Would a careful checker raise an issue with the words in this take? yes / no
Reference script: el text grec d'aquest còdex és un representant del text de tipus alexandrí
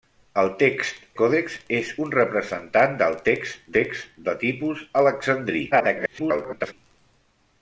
yes